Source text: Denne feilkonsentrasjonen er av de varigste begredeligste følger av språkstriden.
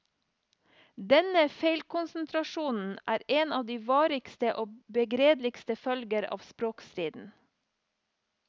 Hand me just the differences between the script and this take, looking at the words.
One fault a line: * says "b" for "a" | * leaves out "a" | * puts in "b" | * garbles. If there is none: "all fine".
* puts in "en"
* puts in "og"